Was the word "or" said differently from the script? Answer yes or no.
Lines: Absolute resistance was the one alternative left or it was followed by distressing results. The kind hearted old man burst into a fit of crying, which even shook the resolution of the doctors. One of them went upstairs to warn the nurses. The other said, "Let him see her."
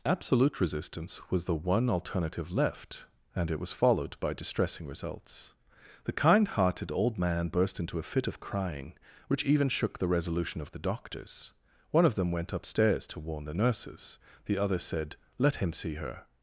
yes